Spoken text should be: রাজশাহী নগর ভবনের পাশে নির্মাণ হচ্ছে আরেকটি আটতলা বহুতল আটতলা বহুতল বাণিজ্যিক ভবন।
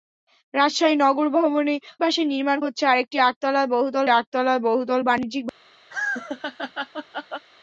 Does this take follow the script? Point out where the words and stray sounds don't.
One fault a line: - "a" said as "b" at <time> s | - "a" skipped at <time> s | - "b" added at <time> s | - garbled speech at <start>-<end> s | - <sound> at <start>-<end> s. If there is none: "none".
- laugh at 5.9-7.5 s